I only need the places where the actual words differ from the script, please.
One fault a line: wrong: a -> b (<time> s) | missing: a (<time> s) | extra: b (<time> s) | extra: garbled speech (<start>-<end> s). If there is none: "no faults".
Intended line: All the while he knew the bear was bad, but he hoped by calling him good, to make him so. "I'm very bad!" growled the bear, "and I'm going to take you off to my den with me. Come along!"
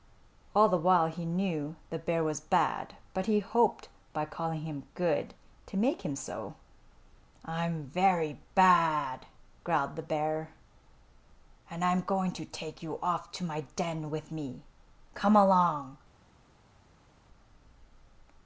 no faults